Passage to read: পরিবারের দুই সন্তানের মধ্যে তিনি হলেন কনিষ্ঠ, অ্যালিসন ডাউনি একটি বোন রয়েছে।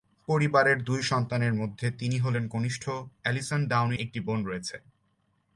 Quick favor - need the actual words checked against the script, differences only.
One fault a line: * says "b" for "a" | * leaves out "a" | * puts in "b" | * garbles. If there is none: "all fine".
all fine